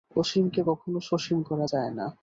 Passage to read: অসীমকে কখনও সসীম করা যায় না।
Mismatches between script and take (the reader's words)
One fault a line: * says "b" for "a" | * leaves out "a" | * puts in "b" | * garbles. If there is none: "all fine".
all fine